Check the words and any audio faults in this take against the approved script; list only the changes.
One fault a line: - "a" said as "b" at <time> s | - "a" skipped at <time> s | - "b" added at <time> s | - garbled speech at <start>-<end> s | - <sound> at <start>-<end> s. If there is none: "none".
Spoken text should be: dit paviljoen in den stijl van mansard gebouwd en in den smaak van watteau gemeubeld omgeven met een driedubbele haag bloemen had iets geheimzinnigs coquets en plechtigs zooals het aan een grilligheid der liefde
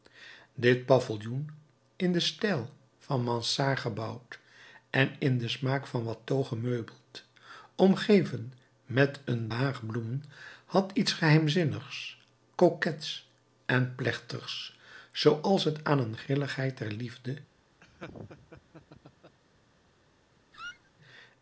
- "driedubbele" skipped at 9.5 s
- laugh at 17.8-19.4 s
- squeak at 20.5-20.9 s